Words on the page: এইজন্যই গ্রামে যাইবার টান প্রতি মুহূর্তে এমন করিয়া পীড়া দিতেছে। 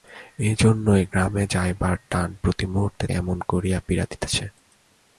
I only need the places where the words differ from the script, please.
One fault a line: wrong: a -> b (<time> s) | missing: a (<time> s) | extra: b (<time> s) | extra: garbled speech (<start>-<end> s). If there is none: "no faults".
no faults